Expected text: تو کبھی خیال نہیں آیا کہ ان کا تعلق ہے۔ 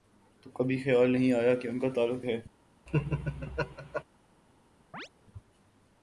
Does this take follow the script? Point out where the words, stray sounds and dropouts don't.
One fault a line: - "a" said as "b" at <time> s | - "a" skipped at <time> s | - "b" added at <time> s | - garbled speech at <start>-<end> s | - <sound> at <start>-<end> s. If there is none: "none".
- laugh at 2.9-4.0 s
- chirp at 4.9-5.1 s